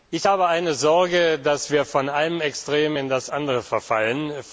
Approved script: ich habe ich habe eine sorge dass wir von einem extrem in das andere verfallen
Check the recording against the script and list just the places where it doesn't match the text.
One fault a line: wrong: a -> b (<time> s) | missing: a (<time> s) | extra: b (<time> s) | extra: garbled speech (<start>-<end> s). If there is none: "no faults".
missing: ich habe (0.5 s)